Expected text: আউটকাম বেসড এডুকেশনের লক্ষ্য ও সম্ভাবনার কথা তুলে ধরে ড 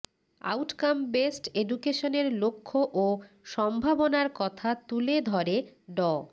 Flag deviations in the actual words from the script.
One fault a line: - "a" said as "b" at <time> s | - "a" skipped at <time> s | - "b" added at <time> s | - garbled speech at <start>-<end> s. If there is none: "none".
none